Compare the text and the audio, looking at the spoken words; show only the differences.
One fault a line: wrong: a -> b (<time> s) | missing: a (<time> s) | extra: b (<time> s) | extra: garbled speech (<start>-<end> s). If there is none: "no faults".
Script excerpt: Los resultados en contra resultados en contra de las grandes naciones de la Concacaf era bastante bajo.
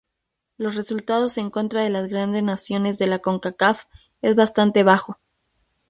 missing: resultados en contra (1.8 s)
wrong: era -> es (4.2 s)